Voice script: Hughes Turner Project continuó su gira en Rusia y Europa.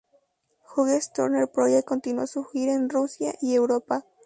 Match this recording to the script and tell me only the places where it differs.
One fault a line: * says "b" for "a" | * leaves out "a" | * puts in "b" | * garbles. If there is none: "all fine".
all fine